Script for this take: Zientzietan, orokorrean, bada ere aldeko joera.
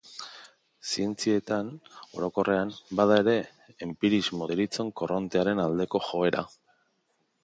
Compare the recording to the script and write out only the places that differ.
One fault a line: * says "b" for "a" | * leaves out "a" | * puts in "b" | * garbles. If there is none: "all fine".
* puts in "enpirismo deritzon korrontearen"